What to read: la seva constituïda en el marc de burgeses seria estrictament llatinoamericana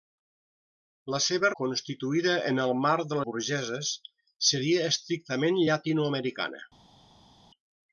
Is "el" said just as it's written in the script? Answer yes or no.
yes